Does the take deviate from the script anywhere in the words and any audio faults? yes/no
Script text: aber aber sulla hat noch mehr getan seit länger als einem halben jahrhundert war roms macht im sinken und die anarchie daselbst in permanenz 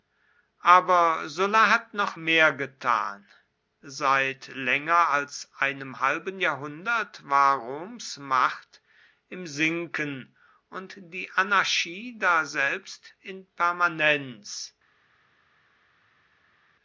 yes